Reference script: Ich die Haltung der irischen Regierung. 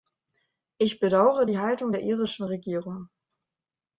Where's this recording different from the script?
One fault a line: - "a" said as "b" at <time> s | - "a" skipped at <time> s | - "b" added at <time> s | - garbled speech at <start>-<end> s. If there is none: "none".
- "bedaure" added at 1.0 s